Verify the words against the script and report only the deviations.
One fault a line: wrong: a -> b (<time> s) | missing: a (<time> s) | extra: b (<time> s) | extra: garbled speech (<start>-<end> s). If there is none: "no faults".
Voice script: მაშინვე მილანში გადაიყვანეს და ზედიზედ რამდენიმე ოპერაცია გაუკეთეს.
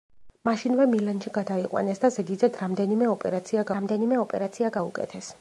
extra: რამდენიმე ოპერაცია (3.8 s)